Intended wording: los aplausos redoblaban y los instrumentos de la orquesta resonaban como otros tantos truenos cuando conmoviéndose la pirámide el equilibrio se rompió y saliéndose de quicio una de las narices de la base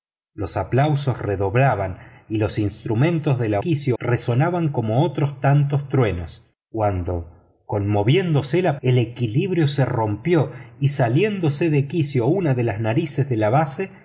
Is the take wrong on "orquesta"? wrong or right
wrong